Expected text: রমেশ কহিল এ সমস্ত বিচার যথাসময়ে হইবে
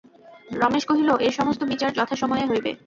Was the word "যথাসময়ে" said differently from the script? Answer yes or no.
no